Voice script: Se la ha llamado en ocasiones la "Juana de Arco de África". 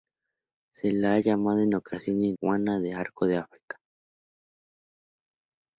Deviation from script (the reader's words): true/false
true